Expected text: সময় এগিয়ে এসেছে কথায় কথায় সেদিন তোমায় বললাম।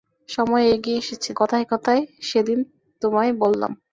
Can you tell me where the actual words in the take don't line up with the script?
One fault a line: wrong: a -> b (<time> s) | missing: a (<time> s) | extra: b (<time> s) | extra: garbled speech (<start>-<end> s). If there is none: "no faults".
no faults